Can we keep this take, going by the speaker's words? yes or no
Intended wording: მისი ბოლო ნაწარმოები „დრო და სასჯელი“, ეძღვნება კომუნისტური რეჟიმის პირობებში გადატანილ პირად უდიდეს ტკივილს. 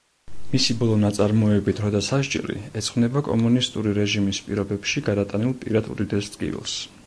yes